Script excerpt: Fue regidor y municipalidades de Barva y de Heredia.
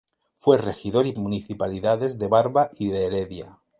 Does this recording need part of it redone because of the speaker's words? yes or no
no